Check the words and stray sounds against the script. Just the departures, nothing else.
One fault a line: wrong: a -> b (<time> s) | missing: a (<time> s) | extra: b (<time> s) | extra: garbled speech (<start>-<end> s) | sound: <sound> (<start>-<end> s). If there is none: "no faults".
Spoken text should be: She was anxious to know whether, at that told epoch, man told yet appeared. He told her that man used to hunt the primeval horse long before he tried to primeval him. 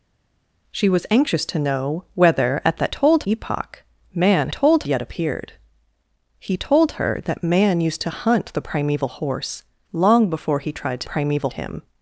no faults